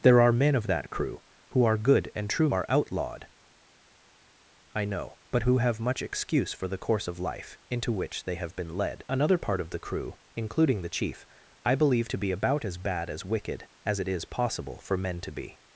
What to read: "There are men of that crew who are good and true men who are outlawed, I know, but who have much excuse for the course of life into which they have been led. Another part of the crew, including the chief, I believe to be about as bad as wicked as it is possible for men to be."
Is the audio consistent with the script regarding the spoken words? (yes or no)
no